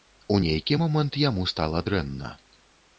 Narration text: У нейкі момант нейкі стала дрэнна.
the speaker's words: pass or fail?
fail